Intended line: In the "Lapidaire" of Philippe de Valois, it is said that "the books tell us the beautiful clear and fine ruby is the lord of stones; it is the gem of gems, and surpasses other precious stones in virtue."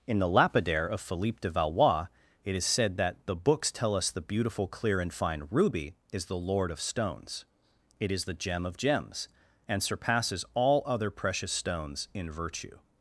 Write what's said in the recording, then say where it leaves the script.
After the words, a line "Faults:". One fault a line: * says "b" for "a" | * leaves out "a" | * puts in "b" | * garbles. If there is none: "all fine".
In the "Lapidaire" of Philippe de Valois, it is said that "the books tell us the beautiful clear and fine ruby is the lord of stones; it is the gem of gems, and surpasses all other precious stones in virtue."
Faults:
* puts in "all"